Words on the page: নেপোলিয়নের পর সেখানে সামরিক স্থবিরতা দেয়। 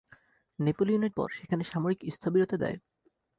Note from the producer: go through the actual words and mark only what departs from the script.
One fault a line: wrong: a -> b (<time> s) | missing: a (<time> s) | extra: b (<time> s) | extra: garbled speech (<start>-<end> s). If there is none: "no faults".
no faults